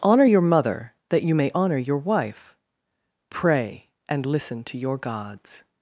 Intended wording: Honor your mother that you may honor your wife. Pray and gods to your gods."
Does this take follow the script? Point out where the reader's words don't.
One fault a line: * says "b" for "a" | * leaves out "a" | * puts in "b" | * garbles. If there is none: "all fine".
* says "listen" for "gods"